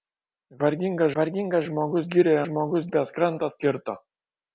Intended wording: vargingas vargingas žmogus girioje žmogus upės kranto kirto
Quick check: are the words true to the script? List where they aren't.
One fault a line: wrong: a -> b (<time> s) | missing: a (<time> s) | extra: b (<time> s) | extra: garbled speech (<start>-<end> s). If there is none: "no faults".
no faults